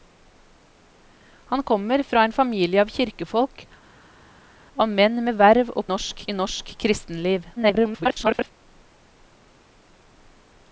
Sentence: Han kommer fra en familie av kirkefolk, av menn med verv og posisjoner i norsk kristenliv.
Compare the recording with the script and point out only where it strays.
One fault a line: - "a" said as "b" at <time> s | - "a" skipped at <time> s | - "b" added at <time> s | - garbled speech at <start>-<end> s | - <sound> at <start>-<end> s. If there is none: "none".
- "posisjoner" said as "norsk" at 5.9 s
- garbled speech at 7.6-8.5 s